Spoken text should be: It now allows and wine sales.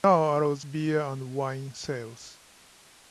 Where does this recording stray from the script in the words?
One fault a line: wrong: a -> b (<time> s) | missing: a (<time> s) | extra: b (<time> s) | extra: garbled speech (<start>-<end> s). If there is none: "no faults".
extra: beer (0.6 s)